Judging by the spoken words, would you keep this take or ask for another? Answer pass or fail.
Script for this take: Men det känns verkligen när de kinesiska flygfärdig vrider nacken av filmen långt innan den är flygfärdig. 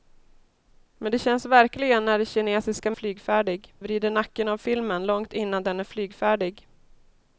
pass